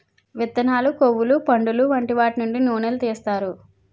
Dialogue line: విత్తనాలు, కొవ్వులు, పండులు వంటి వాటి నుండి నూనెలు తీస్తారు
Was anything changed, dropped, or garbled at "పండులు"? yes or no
no